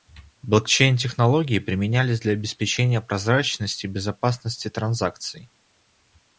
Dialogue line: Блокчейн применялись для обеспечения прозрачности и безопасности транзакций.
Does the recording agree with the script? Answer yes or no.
no